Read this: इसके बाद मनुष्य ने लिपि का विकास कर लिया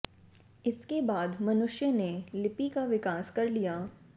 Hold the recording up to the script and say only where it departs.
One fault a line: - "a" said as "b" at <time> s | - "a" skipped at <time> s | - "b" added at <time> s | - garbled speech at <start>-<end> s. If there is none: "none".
none